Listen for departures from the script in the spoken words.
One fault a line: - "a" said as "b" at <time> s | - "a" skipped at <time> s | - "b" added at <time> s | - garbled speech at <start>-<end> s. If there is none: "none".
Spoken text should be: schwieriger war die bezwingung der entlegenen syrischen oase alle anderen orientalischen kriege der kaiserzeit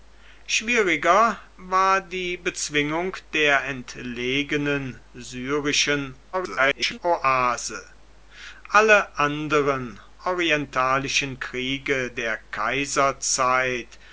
- garbled speech at 6.3-7.0 s